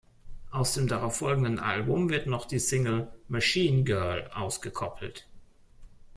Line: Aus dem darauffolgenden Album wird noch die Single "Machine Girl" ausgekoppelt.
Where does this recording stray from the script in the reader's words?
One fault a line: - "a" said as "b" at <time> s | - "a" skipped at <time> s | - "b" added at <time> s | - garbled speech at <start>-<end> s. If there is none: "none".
none